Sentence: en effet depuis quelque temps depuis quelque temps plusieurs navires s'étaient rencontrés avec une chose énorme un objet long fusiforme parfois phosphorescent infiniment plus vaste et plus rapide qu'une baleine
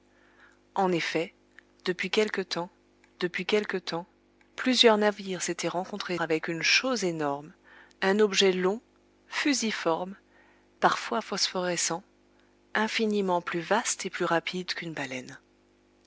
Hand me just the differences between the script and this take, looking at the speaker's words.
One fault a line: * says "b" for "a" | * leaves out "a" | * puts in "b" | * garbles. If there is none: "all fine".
all fine